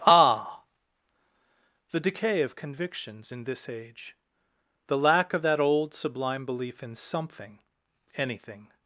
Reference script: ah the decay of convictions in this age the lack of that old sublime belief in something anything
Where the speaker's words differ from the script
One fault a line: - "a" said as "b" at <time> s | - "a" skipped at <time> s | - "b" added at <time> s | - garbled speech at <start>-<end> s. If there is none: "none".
none